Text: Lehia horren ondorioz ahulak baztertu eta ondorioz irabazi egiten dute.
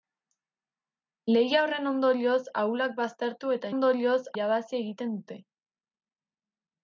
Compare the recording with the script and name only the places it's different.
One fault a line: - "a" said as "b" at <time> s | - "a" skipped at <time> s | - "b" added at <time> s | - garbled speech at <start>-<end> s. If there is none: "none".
none